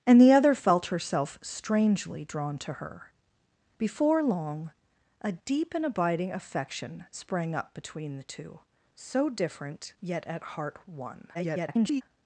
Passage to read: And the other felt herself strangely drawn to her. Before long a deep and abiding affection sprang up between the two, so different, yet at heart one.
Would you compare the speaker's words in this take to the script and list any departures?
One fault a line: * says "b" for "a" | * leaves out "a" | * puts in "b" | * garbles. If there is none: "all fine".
* garbles